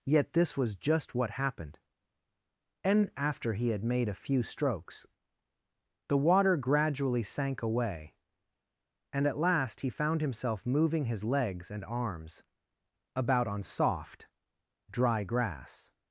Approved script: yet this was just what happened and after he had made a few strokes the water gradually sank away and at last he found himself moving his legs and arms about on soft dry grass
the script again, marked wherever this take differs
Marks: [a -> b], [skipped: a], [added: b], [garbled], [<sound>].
yet this was just what happened and after he had made a few strokes the water gradually sank away and at last he found himself moving his legs and arms about on soft dry grass